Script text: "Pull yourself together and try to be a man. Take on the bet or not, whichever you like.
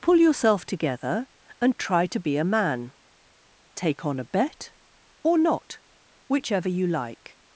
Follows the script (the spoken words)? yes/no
no